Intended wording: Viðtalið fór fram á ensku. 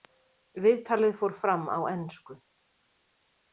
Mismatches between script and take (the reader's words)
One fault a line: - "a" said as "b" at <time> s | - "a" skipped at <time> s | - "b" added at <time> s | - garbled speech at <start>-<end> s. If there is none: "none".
none